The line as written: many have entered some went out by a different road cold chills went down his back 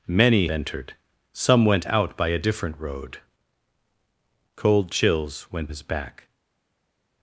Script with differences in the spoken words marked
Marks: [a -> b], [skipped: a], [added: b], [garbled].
many [skipped: have] entered some went out by a different road cold chills went [skipped: down] his back